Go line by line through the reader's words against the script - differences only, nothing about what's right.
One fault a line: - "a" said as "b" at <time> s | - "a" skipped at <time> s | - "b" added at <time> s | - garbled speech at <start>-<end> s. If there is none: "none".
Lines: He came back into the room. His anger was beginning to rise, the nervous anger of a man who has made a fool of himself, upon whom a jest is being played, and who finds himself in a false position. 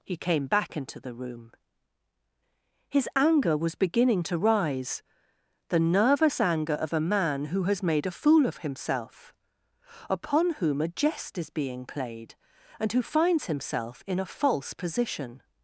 none